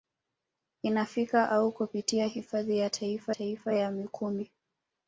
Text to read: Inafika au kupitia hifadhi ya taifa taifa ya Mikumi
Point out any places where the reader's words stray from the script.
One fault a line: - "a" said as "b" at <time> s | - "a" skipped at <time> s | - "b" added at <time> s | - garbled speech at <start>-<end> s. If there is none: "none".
none